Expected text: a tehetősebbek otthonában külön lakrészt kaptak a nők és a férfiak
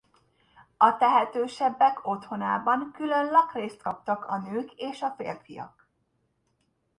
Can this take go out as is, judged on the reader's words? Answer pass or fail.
pass